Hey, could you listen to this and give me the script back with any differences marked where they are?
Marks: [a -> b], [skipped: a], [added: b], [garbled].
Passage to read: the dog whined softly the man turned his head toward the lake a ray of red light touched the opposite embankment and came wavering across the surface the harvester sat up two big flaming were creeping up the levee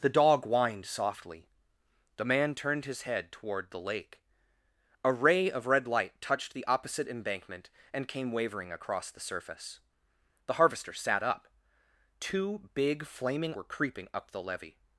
the dog whined softly the man turned his head toward the lake a ray of red light touched the opposite embankment and came wavering across the surface the harvester sat up two big flaming were creeping up the levee